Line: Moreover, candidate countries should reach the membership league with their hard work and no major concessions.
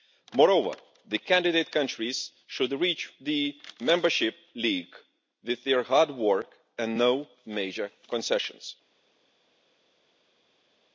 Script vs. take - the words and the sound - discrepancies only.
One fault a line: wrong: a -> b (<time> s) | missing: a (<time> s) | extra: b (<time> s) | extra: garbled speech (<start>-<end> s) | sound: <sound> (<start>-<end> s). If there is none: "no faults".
extra: the (1.1 s)